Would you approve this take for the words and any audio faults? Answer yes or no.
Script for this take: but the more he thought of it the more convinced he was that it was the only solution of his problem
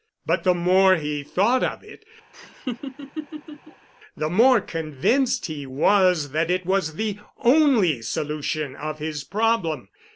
no